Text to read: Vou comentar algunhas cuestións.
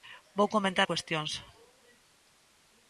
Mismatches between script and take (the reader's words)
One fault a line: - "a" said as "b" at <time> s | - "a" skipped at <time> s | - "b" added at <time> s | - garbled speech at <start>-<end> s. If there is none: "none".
- "algunhas" skipped at 0.9 s